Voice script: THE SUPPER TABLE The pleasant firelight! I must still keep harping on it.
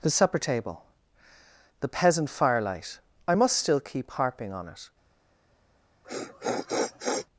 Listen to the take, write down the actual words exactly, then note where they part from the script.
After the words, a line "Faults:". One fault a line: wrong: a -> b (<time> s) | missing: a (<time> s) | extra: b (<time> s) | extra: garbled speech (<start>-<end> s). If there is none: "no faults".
THE SUPPER TABLE The peasant firelight! I must still keep harping on it.
Faults:
wrong: pleasant -> peasant (1.9 s)